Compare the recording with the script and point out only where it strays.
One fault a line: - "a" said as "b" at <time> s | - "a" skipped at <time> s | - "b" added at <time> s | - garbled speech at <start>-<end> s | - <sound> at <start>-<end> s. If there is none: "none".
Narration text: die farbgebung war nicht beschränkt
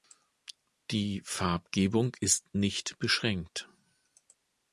- "war" said as "ist" at 2.2 s